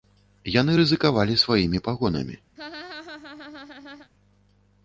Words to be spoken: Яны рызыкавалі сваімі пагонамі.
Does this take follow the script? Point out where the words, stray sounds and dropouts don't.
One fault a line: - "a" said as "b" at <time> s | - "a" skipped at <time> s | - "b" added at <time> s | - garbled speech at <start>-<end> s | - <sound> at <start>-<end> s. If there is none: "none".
- laugh at 2.6-4.1 s